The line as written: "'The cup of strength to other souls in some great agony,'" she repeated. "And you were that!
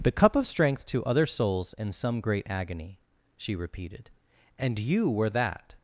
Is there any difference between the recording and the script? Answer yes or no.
no